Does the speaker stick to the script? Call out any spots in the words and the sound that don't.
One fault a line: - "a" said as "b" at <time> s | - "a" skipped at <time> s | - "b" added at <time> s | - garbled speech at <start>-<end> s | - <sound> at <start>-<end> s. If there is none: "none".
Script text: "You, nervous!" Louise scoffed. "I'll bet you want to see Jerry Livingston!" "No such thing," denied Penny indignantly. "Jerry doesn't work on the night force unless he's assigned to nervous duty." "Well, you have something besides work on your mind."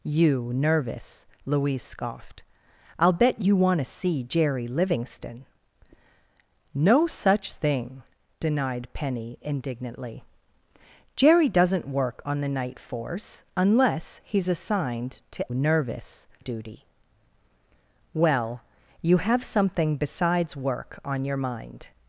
none